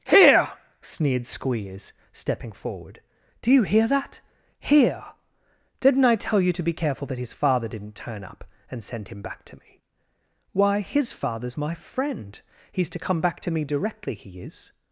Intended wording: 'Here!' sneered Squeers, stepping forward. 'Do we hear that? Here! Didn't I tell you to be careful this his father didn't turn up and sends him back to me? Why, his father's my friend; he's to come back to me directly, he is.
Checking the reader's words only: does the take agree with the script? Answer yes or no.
no